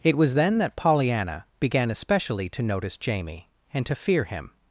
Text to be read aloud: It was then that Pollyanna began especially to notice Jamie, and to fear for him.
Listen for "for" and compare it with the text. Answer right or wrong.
wrong